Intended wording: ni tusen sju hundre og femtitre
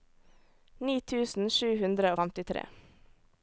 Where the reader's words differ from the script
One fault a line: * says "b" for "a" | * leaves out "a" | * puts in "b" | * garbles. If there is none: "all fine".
all fine